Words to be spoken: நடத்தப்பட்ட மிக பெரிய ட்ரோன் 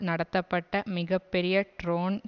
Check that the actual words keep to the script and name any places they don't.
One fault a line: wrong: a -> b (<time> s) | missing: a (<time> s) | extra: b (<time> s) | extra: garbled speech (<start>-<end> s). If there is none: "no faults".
no faults